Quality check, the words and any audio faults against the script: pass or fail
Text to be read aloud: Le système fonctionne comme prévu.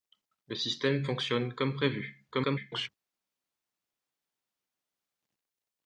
fail